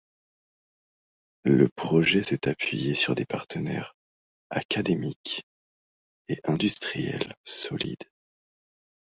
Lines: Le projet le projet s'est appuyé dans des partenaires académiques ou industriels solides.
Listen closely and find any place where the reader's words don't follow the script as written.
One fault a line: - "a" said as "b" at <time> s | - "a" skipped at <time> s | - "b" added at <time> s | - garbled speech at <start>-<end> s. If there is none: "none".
- "le projet" skipped at 2.2 s
- "dans" said as "sur" at 3.0 s
- "ou" said as "et" at 6.3 s